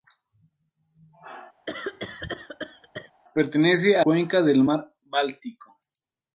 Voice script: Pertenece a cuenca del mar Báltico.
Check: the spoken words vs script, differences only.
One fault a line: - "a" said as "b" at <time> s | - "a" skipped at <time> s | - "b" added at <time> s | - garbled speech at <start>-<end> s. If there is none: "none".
none